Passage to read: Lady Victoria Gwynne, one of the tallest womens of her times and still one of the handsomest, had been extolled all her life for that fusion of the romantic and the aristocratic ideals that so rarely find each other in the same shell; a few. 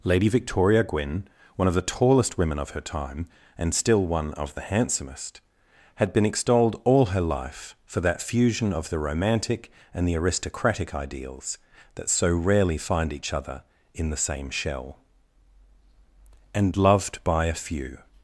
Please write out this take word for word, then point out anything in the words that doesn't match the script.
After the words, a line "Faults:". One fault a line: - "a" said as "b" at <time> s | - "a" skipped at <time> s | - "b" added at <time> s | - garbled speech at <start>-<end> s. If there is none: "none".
Lady Victoria Gwynne, one of the tallest women of her time and still one of the handsomest, had been extolled all her life for that fusion of the romantic and the aristocratic ideals that so rarely find each other in the same shell; and loved by a few.
Faults:
- "womens" said as "women" at 2.4 s
- "times" said as "time" at 2.8 s
- "and loved by" added at 16.5 s